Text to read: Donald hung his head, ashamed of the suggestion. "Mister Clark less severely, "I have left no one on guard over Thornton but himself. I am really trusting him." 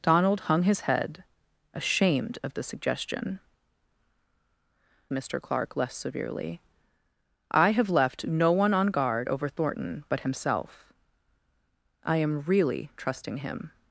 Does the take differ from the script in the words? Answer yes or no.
no